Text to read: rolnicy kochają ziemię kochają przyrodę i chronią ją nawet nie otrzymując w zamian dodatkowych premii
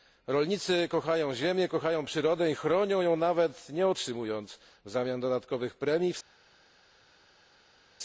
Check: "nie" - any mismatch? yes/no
no